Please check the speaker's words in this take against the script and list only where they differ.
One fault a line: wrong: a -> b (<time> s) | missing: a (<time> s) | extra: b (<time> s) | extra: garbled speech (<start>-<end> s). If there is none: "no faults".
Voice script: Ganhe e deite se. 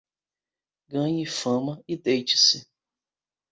extra: fama (1.2 s)